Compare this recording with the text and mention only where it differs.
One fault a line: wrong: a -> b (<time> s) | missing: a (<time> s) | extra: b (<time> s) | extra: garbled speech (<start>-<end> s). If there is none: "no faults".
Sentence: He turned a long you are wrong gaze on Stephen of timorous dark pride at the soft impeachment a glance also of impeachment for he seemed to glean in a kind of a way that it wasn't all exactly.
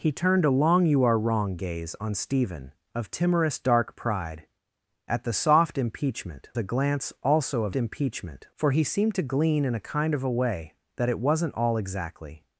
no faults